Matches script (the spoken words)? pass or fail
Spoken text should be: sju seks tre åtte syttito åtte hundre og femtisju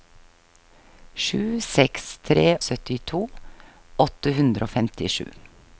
fail